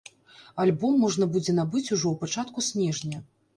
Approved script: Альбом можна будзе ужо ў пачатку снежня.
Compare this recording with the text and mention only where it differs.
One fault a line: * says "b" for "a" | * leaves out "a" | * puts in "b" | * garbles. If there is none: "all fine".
* puts in "набыць"